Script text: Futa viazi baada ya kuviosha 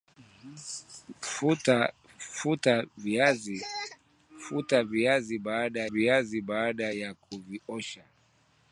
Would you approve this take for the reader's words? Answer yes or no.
no